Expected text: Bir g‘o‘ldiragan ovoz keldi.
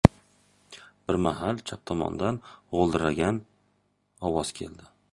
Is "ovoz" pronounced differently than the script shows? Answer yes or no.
no